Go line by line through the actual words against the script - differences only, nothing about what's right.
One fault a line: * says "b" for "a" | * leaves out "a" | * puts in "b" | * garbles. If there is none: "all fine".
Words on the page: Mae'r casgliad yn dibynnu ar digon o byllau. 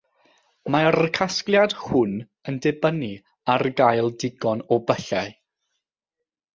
* puts in "hwn"
* puts in "gael"